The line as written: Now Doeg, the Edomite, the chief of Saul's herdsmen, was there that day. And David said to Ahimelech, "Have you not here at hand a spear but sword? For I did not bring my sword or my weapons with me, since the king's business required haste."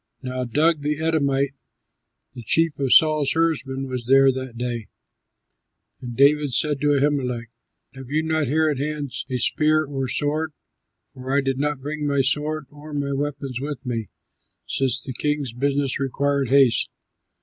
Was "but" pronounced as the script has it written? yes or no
no